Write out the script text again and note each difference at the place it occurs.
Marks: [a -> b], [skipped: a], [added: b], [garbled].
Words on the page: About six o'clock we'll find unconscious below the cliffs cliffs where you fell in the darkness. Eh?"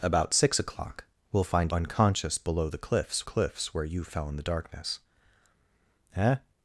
About six o'clock we'll find unconscious below the cliffs cliffs where you fell in the darkness. Eh?"